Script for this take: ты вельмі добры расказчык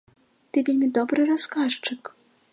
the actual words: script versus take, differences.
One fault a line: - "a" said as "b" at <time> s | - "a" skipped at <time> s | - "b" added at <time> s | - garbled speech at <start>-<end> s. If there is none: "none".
none